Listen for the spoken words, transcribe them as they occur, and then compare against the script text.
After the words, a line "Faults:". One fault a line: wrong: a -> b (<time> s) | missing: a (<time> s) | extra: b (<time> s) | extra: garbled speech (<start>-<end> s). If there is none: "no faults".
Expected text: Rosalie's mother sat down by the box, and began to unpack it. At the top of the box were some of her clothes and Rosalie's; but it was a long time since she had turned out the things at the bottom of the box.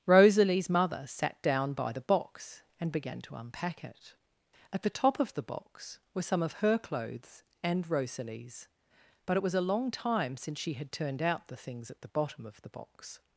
Rosalie's mother sat down by the box, and began to unpack it. At the top of the box were some of her clothes and Rosalie's; but it was a long time since she had turned out the things at the bottom of the box.
Faults:
no faults